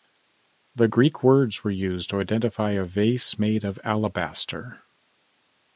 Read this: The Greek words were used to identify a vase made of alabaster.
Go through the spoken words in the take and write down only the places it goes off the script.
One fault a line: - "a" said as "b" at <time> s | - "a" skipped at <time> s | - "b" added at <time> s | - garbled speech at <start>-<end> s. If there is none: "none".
none